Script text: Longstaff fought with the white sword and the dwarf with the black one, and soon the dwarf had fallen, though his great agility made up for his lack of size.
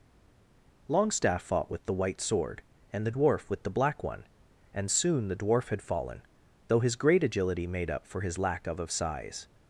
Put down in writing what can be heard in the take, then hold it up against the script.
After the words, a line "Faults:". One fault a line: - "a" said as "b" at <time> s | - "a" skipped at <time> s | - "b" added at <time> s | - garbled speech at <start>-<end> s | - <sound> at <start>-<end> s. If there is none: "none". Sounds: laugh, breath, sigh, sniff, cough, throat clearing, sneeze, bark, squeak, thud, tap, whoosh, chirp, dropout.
Longstaff fought with the white sword and the dwarf with the black one, and soon the dwarf had fallen, though his great agility made up for his lack of of size.
Faults:
- "of" added at 8.8 s